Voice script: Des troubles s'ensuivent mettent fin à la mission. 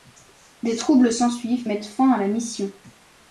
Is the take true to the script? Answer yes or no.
yes